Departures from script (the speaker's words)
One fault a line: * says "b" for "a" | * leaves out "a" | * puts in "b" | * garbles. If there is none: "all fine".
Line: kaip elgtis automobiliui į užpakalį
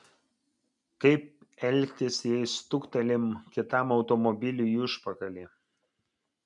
* puts in "jei stuktelim kitam"